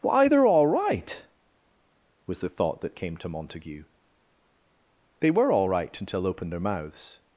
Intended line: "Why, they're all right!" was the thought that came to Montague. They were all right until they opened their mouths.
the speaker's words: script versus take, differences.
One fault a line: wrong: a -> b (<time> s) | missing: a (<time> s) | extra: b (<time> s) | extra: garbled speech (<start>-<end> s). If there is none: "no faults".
missing: they (6.3 s)